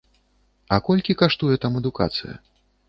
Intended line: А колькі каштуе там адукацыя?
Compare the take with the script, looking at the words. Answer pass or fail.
pass